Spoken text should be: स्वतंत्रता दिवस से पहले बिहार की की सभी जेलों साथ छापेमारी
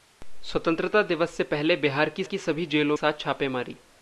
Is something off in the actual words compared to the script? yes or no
no